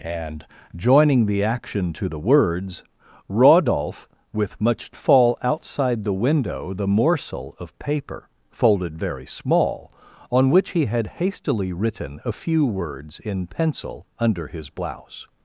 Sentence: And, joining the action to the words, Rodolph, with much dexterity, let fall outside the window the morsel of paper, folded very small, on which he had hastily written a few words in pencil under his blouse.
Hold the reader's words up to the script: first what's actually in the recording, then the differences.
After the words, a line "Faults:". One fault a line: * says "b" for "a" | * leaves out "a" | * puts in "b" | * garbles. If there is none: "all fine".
And, joining the action to the words, Rodolph, with much fall outside the window the morsel of paper, folded very small, on which he had hastily written a few words in pencil under his blouse.
Faults:
* leaves out "dexterity let"